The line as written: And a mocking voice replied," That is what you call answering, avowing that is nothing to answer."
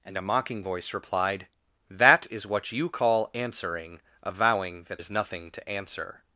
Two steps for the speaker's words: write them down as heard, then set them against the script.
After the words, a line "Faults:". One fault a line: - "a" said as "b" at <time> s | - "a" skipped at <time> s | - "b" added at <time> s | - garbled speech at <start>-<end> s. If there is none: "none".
And a mocking voice replied," That is what you call answering, avowing that is nothing to answer."
Faults:
none